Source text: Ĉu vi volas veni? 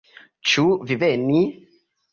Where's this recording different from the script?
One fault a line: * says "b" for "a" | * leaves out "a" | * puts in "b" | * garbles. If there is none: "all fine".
* leaves out "volas"